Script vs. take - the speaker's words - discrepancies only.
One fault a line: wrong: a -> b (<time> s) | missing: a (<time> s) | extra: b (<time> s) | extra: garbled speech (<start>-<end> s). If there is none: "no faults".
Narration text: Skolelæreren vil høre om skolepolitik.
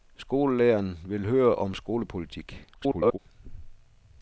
extra: garbled speech (2.7-3.2 s)